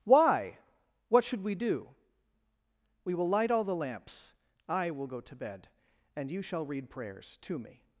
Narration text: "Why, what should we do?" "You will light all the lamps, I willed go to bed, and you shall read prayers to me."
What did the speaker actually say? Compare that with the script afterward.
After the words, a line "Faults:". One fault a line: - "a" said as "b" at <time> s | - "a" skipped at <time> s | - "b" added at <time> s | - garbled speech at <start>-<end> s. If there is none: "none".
"Why, what should we do?" "We will light all the lamps, I will go to bed, and you shall read prayers to me."
Faults:
- "You" said as "We" at 3.0 s
- "willed" said as "will" at 4.9 s